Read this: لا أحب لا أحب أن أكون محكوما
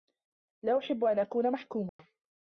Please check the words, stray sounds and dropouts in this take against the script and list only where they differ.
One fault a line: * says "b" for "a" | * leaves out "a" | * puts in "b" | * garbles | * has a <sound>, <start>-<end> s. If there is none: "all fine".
* leaves out "لا أحب"
* has a dropout, 1.9-2.0 s